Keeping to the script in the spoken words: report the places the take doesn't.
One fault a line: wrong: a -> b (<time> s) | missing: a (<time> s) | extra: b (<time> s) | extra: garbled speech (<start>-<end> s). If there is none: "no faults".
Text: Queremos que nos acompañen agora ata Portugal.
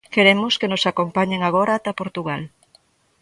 no faults